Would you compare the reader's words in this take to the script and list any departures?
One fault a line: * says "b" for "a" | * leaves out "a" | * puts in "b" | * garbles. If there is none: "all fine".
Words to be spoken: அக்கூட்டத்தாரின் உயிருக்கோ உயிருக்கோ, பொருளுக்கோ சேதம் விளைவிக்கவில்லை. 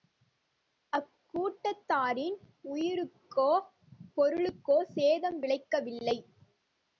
* leaves out "உயிருக்கோ"